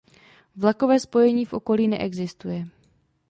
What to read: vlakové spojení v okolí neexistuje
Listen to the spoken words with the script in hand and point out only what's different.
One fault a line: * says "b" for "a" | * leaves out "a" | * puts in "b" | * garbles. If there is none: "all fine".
all fine